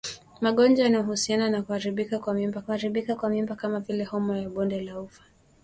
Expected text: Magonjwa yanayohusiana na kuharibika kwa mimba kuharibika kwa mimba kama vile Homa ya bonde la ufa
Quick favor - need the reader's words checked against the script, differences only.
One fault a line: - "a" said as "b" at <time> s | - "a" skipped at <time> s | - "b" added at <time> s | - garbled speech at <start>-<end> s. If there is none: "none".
none